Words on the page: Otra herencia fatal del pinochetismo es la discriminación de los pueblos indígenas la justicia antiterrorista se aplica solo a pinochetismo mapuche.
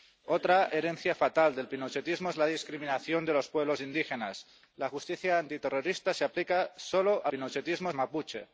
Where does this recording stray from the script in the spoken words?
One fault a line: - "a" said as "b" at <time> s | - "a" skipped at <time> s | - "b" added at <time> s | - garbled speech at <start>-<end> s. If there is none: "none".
none